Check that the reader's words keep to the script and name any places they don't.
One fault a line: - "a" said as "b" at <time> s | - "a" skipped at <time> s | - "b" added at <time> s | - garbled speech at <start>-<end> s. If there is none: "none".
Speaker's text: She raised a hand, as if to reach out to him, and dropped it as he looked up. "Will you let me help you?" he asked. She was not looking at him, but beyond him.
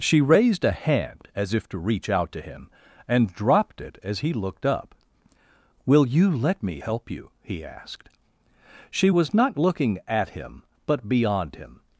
none